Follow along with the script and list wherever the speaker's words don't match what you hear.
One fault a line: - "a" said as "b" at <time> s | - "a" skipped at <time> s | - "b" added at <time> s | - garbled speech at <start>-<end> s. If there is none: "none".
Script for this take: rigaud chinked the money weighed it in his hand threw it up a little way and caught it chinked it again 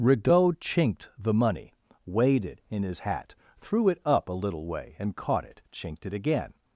- "hand" said as "hat" at 3.0 s